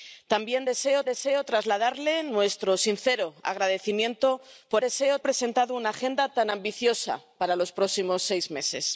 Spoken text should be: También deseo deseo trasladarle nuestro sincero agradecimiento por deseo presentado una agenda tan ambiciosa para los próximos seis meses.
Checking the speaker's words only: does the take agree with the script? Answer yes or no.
yes